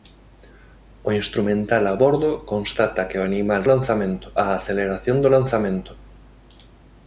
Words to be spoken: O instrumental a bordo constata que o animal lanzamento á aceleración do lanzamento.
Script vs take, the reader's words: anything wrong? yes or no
no